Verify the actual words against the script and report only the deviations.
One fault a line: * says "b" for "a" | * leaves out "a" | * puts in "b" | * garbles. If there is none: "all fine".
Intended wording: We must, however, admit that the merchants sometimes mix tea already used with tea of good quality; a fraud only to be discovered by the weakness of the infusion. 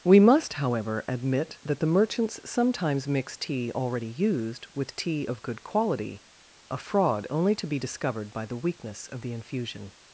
all fine